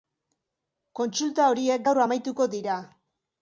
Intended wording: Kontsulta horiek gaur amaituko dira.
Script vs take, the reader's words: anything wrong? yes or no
no